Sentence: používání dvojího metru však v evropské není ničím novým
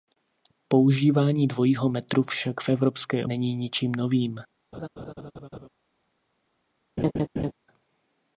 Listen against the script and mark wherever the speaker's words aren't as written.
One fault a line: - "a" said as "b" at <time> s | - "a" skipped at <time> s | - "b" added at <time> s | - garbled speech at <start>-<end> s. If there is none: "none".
none